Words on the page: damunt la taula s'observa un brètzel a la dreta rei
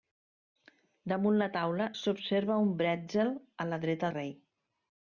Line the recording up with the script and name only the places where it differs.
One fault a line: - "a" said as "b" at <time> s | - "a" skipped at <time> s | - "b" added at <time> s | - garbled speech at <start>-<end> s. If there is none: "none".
none